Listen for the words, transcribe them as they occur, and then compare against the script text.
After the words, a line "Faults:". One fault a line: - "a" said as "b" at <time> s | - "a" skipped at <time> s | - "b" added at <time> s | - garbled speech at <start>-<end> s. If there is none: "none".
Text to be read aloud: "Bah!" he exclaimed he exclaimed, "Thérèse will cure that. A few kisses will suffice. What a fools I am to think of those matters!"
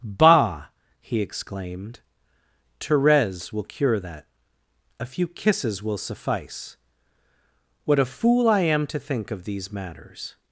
"Bah!" he exclaimed, "Thérèse will cure that. A few kisses will suffice. What a fool I am to think of these matters!"
Faults:
- "he exclaimed" skipped at 2.0 s
- "fools" said as "fool" at 8.1 s
- "those" said as "these" at 9.4 s